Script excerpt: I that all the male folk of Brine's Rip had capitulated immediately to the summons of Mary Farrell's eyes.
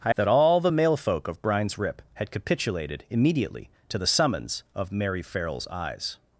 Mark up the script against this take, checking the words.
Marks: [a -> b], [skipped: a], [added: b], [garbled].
I that all the male folk of Brine's Rip had capitulated immediately to the summons of Mary Farrell's eyes.